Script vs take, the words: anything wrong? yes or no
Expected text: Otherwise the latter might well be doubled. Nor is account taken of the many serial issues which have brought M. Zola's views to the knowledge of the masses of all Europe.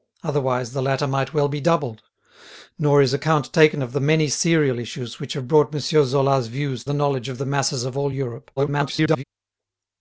yes